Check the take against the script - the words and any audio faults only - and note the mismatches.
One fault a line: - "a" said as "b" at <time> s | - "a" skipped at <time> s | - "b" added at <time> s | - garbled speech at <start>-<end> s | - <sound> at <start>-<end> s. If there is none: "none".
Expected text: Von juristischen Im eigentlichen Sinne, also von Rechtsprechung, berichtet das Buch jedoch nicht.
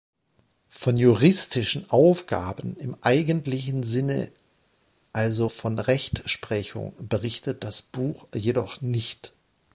- "Aufgaben" added at 1.9 s